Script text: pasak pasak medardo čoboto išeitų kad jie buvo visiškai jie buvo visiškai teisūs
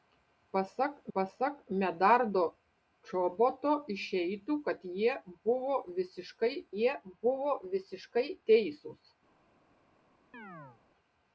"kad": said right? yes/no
yes